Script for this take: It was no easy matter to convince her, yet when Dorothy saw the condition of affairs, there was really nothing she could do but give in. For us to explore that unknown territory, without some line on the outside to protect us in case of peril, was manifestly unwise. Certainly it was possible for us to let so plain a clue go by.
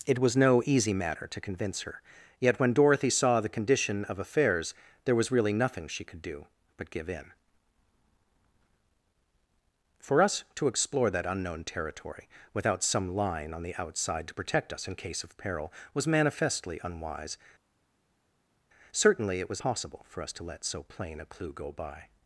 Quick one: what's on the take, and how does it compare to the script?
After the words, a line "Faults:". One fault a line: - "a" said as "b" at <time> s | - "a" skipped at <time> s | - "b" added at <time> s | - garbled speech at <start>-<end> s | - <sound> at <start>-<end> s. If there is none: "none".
It was no easy matter to convince her, yet when Dorothy saw the condition of affairs, there was really nothing she could do but give in. For us to explore that unknown territory, without some line on the outside to protect us in case of peril, was manifestly unwise. Certainly it was possible for us to let so plain a clue go by.
Faults:
none